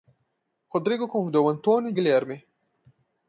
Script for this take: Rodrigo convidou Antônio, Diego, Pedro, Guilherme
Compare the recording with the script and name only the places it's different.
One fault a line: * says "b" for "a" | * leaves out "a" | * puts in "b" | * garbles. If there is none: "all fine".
* leaves out "Diego Pedro"